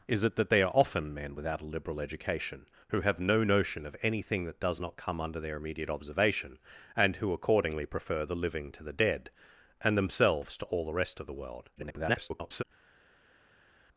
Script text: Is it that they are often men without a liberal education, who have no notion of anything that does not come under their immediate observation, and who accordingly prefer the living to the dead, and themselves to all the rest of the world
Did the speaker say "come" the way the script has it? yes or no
yes